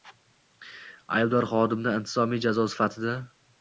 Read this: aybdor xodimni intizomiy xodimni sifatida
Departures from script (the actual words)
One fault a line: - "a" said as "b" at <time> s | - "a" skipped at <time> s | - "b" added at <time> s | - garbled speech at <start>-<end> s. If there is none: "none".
- "xodimni" said as "jazo" at 2.5 s